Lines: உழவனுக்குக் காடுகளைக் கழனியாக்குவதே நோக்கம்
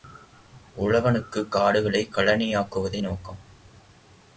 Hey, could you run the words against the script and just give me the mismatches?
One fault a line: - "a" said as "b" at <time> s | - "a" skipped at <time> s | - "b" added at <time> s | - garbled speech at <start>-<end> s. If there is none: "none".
none